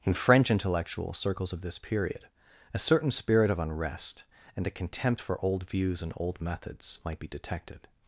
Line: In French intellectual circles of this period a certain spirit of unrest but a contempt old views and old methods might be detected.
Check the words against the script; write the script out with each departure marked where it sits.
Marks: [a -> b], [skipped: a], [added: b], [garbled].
In French intellectual circles of this period a certain spirit of unrest [but -> and] a contempt [added: for] old views and old methods might be detected.